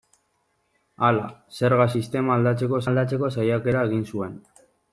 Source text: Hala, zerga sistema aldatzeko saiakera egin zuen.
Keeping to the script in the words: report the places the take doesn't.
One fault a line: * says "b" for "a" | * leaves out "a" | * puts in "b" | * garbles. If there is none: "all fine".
* puts in "aldatzeko"